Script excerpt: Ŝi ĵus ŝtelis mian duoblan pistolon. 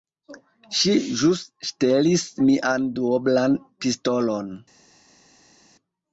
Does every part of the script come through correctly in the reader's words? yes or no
yes